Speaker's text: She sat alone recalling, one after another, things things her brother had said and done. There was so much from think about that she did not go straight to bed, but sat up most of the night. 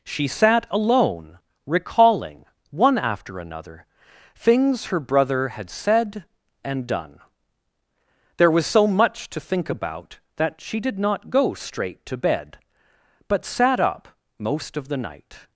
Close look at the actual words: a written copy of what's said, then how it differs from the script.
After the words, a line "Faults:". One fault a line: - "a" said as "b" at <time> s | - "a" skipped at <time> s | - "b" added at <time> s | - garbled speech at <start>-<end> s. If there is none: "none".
She sat alone recalling, one after another, things her brother had said and done. There was so much to think about that she did not go straight to bed, but sat up most of the night.
Faults:
- "things" skipped at 4.8 s
- "from" said as "to" at 9.3 s